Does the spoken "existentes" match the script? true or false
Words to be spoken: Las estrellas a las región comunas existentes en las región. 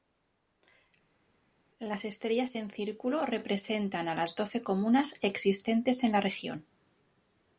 true